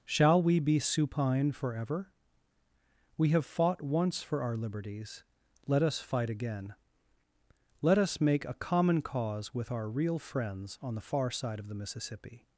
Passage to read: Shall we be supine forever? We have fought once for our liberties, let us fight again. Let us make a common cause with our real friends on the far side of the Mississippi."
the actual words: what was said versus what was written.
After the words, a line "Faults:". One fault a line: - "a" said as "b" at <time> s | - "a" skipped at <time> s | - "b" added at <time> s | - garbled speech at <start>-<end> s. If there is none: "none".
Shall we be supine forever? We have fought once for our liberties, let us fight again. Let us make a common cause with our real friends on the far side of the Mississippi."
Faults:
none